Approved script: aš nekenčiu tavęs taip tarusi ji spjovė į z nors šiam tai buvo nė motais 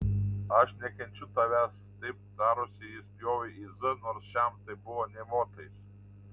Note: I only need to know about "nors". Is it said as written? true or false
true